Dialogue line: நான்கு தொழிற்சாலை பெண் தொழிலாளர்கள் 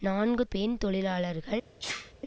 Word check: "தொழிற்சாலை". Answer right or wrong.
wrong